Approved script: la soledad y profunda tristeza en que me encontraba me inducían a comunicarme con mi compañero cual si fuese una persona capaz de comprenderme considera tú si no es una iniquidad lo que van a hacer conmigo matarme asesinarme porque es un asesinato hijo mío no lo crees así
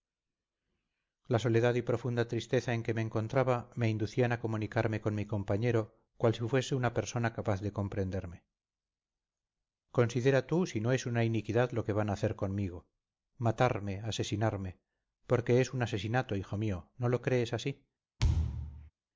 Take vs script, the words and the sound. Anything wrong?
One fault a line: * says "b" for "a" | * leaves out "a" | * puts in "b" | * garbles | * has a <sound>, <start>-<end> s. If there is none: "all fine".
* has a thud, 18.2-18.9 s